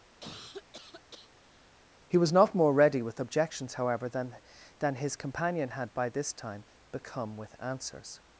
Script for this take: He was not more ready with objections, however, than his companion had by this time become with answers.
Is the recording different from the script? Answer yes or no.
yes